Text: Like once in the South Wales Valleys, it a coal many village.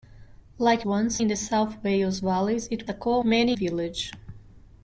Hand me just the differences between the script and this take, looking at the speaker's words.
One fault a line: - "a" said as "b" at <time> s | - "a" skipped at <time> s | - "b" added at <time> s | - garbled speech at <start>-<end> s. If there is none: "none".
none